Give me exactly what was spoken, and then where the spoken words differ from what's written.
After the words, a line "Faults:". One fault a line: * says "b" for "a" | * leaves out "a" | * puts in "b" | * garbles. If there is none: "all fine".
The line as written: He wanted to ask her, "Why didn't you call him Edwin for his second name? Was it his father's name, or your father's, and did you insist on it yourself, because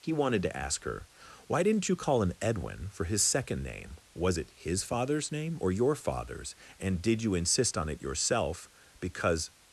He wanted to ask her, "Why didn't you call him Edwin for his second name? Was it his father's name, or your father's, and did you insist on it yourself, because
Faults:
all fine